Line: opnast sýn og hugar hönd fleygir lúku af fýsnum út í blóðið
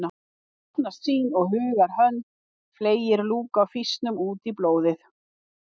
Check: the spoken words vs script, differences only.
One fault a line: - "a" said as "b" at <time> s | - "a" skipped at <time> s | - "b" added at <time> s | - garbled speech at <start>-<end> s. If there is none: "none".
none